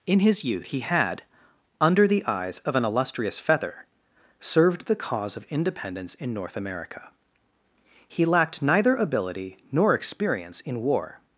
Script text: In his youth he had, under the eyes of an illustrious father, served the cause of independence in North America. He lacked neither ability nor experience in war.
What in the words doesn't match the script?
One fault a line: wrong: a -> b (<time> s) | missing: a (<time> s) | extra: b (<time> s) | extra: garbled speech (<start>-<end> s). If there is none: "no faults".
wrong: father -> feather (3.4 s)